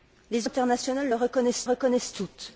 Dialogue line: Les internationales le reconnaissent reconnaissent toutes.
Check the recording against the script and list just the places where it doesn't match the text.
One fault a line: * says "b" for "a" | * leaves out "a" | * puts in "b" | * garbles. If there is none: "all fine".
all fine